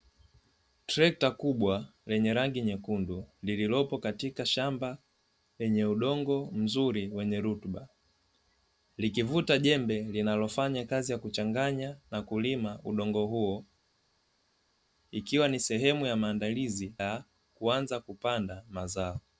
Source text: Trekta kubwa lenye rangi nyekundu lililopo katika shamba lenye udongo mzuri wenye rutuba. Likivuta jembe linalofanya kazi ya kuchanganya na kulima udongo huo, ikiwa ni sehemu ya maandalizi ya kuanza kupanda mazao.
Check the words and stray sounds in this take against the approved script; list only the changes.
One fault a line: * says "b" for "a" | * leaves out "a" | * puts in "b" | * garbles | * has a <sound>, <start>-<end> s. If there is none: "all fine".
all fine